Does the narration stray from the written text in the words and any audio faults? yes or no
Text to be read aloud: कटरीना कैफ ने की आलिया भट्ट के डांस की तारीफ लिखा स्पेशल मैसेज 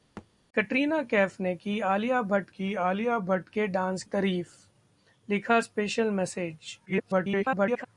yes